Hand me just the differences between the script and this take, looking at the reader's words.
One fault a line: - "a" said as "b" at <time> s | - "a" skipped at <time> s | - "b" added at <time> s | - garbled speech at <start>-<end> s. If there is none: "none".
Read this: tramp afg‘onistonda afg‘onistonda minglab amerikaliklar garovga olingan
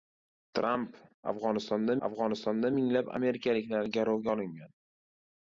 none